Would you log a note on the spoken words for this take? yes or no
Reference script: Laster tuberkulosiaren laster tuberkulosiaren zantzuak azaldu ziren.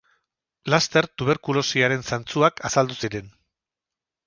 yes